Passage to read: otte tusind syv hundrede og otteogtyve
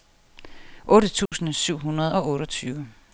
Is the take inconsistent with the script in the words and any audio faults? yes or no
yes